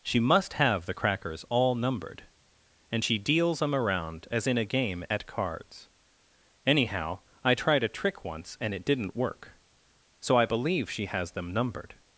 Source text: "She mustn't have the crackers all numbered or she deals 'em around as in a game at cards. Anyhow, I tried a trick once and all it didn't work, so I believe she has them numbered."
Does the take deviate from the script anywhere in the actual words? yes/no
yes